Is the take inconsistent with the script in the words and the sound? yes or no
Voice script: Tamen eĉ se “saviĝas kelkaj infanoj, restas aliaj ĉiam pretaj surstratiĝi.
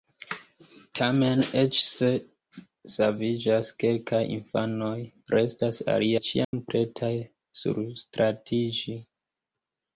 yes